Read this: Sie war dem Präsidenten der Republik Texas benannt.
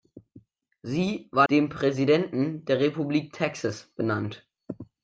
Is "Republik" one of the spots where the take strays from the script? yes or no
no